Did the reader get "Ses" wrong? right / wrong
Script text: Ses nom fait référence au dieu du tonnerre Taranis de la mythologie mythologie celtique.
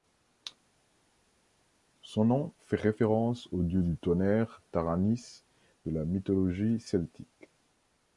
wrong